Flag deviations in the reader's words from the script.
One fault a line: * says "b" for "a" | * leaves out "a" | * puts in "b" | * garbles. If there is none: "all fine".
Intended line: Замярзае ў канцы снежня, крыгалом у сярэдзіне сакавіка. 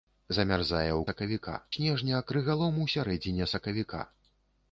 * says "сакавіка" for "канцы"